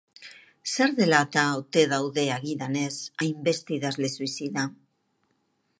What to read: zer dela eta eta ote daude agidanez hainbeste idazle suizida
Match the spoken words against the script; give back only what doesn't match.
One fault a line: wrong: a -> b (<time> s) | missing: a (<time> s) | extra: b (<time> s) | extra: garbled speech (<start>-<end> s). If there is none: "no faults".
missing: eta (1.4 s)